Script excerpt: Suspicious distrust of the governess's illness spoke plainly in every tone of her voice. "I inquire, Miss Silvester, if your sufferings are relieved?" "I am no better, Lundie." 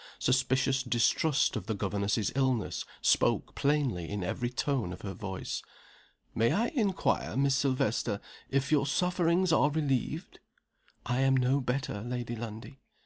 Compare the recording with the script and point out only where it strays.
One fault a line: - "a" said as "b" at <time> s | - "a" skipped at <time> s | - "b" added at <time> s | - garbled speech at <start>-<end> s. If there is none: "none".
- "May" added at 6.3 s
- "Lady" added at 12.0 s